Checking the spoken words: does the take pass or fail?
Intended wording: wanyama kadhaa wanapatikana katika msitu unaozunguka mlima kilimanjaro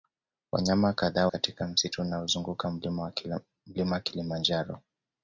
fail